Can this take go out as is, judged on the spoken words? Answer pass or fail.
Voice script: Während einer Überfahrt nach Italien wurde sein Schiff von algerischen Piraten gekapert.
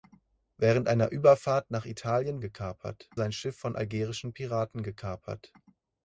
fail